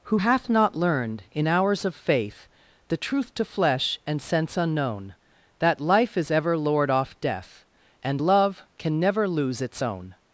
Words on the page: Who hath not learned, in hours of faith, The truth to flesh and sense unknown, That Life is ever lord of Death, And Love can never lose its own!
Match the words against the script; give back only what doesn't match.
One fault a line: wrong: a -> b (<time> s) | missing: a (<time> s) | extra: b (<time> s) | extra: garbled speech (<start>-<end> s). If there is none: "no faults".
wrong: of -> off (6.9 s)